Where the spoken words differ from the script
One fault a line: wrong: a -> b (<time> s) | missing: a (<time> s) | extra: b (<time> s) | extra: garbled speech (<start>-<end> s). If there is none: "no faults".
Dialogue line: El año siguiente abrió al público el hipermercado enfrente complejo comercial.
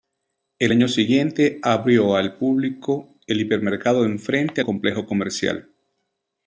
no faults